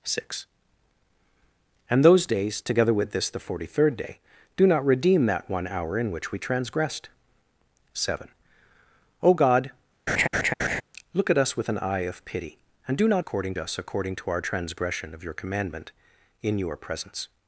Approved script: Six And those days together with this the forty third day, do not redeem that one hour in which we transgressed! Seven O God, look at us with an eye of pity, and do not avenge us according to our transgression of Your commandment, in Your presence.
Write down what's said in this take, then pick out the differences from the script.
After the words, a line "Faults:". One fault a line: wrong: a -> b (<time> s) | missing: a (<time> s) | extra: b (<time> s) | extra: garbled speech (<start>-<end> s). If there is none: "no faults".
Six And those days together with this the forty third day, do not redeem that one hour in which we transgressed! Seven O God, look at us with an eye of pity, and do not according us according to our transgression of Your commandment, in Your presence.
Faults:
wrong: avenge -> according (13.2 s)